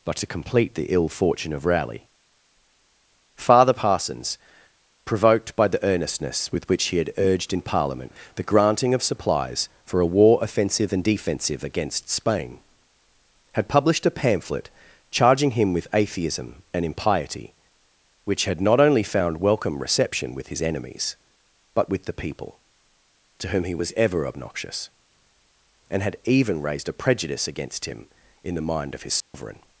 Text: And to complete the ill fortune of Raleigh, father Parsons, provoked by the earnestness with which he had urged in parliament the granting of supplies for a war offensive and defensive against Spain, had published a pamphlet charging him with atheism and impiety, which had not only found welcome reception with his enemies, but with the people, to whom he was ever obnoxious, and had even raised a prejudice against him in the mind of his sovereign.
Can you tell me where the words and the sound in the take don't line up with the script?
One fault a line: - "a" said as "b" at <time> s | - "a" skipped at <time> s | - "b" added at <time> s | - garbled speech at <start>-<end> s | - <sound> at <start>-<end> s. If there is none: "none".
- "And" said as "But" at 0.0 s
- dropout at 29.2-29.3 s